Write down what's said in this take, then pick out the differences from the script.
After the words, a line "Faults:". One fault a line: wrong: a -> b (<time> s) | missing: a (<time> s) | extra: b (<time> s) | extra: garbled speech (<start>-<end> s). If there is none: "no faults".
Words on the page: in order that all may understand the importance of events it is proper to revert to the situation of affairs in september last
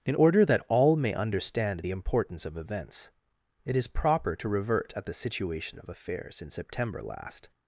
in order that all may understand the importance of events it is proper to revert at the situation of affairs in september last
Faults:
wrong: to -> at (5.0 s)